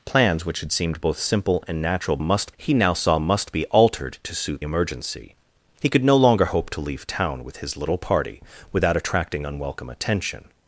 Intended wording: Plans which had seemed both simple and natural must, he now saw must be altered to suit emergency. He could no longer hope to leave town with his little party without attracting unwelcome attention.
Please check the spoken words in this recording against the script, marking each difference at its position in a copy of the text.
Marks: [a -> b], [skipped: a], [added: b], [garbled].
Plans which had seemed both simple and natural must, he now saw must be altered to suit emergency. He could no longer hope to leave town with his little party without attracting unwelcome attention.